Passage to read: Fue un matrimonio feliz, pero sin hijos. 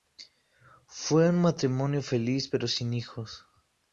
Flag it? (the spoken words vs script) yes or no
no